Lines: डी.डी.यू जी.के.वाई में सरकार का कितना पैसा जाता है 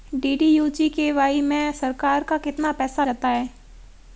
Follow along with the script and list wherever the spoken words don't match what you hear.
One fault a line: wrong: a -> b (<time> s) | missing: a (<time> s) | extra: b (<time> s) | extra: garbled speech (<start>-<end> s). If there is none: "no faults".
no faults